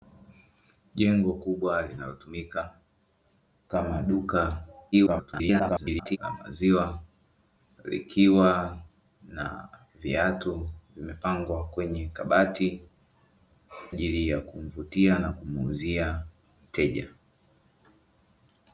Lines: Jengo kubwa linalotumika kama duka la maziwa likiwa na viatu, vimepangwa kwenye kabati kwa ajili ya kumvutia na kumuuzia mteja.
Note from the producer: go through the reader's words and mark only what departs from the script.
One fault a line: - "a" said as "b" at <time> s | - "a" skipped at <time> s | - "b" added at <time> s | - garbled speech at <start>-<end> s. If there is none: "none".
- garbled speech at 4.9-6.2 s
- "kwa" skipped at 12.8 s